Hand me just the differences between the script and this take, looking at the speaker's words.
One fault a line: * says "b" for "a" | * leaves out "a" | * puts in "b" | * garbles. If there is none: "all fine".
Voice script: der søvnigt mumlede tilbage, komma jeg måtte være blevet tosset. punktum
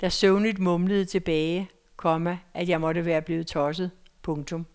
* puts in "at"